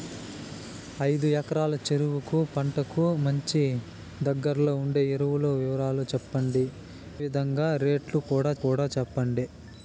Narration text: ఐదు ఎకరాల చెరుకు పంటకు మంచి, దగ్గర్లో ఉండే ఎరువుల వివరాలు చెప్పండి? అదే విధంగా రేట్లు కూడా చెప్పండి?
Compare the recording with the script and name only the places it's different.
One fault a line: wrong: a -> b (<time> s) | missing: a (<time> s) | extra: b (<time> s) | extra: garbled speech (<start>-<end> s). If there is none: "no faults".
missing: అదే (6.7 s)
extra: కూడా (8.6 s)